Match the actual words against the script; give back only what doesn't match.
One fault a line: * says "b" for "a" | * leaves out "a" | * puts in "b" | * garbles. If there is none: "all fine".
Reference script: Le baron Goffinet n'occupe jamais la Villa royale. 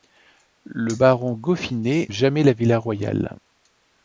* leaves out "n'occupe"